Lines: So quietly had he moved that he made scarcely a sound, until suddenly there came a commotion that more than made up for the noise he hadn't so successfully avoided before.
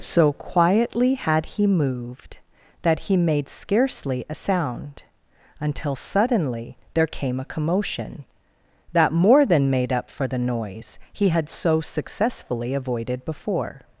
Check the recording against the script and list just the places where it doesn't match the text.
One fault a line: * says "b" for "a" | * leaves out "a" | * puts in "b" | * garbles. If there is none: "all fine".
* says "had" for "hadn't"